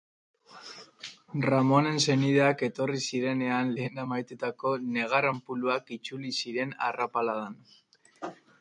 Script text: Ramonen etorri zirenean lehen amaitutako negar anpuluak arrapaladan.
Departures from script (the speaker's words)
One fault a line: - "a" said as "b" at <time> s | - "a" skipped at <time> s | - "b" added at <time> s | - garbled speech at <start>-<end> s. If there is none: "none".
- "senideak" added at 2.0 s
- "itzuli ziren" added at 6.0 s